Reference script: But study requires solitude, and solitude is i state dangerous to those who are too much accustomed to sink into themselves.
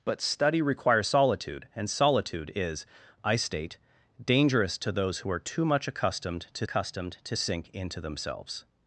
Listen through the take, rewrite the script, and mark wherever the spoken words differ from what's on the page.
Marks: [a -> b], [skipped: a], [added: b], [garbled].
But study requires solitude, and solitude is i state dangerous to those who are too much accustomed to [added: accustomed to] sink into themselves.